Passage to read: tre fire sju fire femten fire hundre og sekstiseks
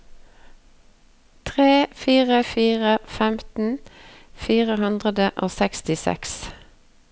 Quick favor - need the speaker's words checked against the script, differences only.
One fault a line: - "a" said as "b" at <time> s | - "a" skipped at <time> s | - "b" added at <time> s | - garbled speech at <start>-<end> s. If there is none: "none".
- "sju" skipped at 2.4 s